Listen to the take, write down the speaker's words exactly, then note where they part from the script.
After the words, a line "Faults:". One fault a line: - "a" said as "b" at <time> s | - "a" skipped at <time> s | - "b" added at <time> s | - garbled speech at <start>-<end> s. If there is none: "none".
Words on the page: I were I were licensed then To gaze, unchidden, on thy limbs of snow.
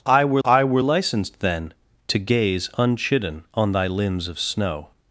I were I were licensed then To gaze, unchidden, on thy limbs of snow.
Faults:
none